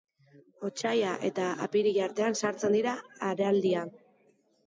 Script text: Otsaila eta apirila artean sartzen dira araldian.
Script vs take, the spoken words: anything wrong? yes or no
no